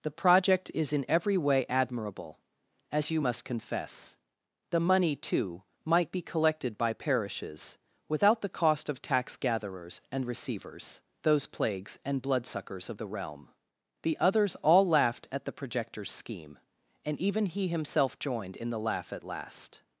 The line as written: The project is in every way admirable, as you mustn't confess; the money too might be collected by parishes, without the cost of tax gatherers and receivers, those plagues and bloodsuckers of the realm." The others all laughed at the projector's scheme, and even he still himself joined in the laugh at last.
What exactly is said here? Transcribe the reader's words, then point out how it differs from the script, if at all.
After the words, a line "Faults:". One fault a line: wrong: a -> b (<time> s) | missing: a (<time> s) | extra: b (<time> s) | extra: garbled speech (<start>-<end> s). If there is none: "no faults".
The project is in every way admirable, as you must confess; the money too might be collected by parishes, without the cost of tax gatherers and receivers, those plagues and bloodsuckers of the realm." The others all laughed at the projector's scheme, and even he himself joined in the laugh at last.
Faults:
wrong: mustn't -> must (3.2 s)
missing: still (17.7 s)